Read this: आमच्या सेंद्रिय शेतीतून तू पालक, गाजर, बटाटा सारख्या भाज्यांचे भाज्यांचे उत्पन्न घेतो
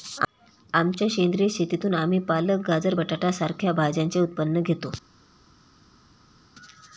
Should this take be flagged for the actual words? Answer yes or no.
yes